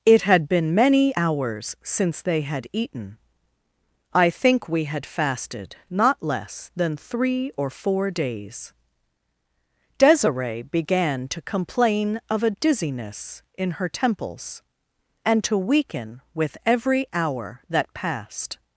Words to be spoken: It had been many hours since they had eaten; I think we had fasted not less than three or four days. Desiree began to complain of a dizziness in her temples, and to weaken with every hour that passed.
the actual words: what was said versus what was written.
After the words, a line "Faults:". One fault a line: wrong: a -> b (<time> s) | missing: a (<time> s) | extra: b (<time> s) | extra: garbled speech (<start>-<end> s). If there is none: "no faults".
It had been many hours since they had eaten; I think we had fasted not less than three or four days. Desiree began to complain of a dizziness in her temples, and to weaken with every hour that passed.
Faults:
no faults